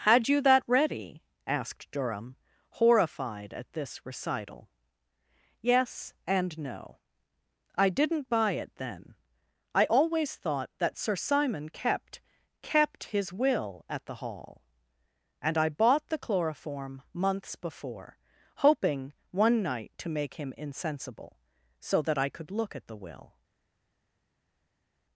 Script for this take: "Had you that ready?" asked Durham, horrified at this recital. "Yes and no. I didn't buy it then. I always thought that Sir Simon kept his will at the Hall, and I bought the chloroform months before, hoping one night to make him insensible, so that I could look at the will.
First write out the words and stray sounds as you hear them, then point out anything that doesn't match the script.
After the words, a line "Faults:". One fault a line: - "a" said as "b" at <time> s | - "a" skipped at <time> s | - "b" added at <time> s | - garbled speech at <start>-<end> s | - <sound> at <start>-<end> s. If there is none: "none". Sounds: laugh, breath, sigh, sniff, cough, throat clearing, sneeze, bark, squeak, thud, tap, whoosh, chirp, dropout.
"Had you that ready?" asked Durham, horrified at this recital. "Yes and no. I didn't buy it then. I always thought that Sir Simon kept kept his will at the Hall, and I bought the chloroform months before, hoping one night to make him insensible, so that I could look at the will.
Faults:
- "kept" added at 12.6 s